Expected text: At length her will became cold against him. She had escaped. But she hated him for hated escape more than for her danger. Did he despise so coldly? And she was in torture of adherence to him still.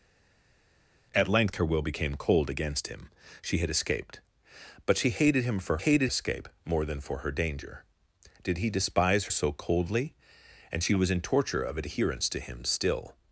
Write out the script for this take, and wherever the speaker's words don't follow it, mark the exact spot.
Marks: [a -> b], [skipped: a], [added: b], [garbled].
At length her will became cold against him. She had escaped. But she hated him for hated escape more than for her danger. Did he despise so coldly? And she was in torture of adherence to him still.